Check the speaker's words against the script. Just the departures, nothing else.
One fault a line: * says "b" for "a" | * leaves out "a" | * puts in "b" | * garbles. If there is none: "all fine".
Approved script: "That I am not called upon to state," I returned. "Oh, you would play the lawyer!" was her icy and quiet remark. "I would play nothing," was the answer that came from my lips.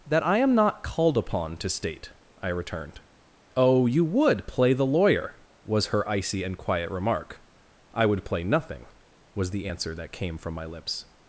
all fine